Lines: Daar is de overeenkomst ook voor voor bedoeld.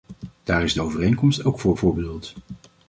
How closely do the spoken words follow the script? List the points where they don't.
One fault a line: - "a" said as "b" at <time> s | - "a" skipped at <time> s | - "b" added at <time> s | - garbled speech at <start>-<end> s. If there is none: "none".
none